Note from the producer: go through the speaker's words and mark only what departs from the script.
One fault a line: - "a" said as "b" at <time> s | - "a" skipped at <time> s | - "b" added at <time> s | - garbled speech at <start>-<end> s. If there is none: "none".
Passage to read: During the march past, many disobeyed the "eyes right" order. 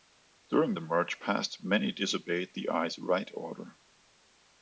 none